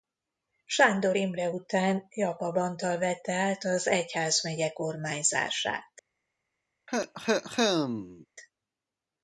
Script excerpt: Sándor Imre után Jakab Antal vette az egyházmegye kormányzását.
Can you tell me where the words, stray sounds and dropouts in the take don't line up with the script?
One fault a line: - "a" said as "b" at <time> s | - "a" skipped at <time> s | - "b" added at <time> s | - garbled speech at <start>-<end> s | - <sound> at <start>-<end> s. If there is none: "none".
- "át" added at 3.3 s
- cough at 6.9-8.3 s